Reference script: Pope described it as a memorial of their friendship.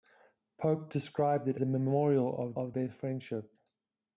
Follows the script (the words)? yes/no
no